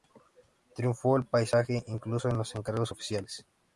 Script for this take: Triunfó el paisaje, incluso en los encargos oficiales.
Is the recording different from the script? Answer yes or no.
no